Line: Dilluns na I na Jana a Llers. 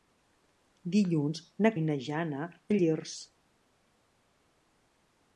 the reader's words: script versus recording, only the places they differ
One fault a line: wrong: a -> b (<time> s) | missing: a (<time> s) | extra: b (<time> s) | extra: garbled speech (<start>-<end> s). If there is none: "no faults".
no faults